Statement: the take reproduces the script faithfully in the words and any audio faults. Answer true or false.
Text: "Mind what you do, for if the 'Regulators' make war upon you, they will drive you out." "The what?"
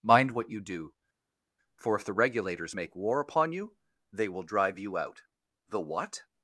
true